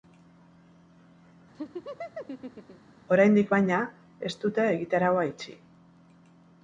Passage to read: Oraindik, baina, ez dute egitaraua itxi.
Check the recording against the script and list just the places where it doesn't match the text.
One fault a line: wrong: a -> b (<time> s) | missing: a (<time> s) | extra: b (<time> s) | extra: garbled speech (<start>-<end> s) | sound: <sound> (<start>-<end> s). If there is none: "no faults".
sound: laugh (1.5-3.0 s)